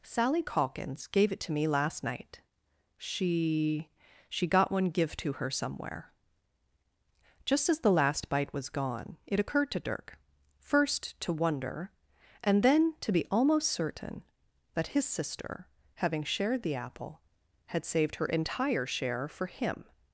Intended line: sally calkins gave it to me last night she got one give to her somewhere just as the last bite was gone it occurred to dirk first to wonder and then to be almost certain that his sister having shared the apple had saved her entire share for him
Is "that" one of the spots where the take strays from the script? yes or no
no